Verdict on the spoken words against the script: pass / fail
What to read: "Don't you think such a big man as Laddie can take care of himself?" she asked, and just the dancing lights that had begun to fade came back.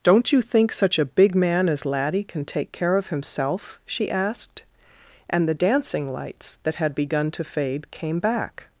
fail